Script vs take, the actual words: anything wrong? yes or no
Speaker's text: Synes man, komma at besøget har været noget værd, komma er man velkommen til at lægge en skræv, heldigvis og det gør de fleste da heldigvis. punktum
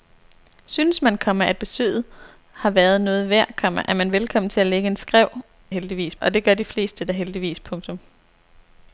no